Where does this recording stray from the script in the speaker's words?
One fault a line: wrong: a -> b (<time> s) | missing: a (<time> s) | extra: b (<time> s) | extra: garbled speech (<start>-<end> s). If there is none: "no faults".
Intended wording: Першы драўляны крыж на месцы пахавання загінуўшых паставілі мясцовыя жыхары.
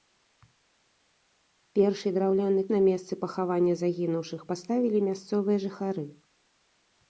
missing: крыж (2.6 s)